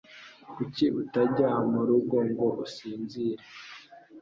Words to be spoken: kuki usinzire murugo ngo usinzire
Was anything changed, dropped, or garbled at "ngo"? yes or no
no